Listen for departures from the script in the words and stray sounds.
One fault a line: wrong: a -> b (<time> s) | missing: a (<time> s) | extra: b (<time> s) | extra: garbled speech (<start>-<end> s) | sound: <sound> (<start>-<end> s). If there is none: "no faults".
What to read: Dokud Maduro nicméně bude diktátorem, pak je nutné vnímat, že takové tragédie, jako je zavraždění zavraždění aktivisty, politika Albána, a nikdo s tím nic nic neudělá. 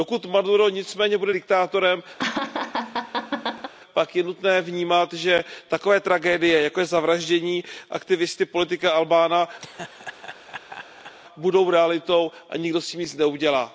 sound: laugh (2.2-3.7 s)
missing: zavraždění (7.6 s)
sound: laugh (9.6-11.1 s)
extra: budou realitou (11.4 s)
missing: nic (13.1 s)